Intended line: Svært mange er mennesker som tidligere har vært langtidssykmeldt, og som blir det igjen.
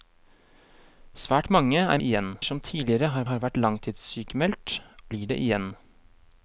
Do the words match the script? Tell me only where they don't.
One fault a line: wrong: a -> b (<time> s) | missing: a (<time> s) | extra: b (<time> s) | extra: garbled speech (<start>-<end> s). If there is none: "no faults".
wrong: mennesker -> igjen (2.0 s)
extra: har (3.3 s)
missing: og som (4.8 s)